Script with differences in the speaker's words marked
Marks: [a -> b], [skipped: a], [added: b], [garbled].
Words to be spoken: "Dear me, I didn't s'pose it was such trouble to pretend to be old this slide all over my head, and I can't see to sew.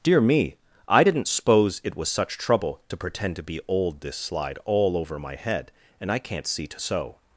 "Dear me, I didn't s'pose it was such trouble to pretend to be old this slide all over my head, and I can't see to sew.